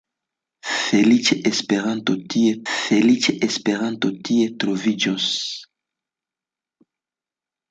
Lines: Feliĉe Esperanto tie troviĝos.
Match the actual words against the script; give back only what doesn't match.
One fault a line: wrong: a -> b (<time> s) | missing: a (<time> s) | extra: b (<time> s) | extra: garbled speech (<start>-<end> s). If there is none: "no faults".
extra: feliĉe Esperanto tie (2.7 s)